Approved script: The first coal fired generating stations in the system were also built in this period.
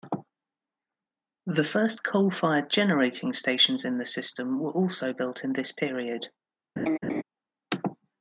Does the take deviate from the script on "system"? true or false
false